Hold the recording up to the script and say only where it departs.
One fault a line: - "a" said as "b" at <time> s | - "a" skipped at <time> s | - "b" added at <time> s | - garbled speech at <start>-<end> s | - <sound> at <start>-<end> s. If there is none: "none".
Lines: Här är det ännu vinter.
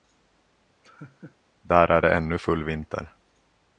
- laugh at 0.8-1.4 s
- "Här" said as "Där" at 1.6 s
- "full" added at 2.4 s